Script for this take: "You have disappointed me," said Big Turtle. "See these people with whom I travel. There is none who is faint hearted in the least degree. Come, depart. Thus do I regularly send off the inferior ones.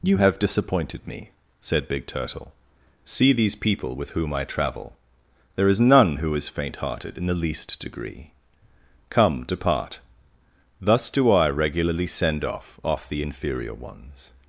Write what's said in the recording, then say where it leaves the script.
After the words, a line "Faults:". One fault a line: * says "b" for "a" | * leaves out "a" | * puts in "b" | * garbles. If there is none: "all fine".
"You have disappointed me," said Big Turtle. "See these people with whom I travel. There is none who is faint hearted in the least degree. Come, depart. Thus do I regularly send off off the inferior ones.
Faults:
* puts in "off"